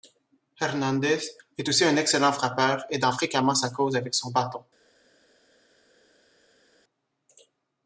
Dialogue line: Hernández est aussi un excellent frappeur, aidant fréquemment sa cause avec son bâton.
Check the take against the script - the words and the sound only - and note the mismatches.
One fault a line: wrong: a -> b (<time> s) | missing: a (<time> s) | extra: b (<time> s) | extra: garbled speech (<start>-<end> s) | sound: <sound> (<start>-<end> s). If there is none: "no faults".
no faults